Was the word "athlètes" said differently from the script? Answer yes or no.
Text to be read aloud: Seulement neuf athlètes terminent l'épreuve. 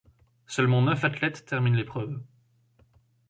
no